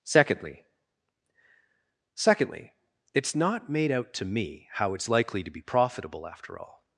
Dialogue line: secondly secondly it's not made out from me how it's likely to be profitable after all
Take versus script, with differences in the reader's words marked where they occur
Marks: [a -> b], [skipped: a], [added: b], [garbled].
secondly secondly it's not made out [from -> to] me how it's likely to be profitable after all